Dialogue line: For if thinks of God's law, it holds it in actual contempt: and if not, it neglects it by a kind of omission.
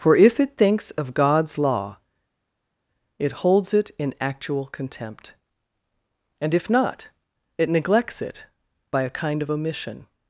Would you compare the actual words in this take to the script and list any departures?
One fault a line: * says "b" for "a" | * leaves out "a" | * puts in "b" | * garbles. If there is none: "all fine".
* puts in "it"